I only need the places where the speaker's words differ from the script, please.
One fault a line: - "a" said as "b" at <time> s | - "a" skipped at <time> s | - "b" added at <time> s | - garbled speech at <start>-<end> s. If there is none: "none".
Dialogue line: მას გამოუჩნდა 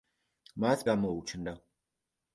none